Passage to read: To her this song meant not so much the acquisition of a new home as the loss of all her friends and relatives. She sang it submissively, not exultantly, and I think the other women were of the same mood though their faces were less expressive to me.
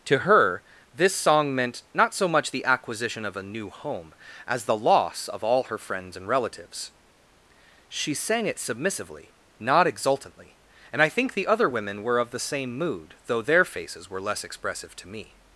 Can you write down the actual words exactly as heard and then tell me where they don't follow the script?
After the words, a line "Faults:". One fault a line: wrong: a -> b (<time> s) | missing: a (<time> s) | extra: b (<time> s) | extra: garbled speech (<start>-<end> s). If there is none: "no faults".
To her this song meant not so much the acquisition of a new home as the loss of all her friends and relatives. She sang it submissively, not exultantly, and I think the other women were of the same mood though their faces were less expressive to me.
Faults:
no faults